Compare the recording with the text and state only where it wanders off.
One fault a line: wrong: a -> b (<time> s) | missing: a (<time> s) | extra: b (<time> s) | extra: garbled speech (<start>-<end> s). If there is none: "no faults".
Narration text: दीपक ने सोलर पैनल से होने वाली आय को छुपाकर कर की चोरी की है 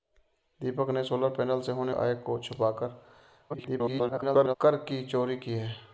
missing: वाली (1.9 s)
extra: garbled speech (3.5-4.6 s)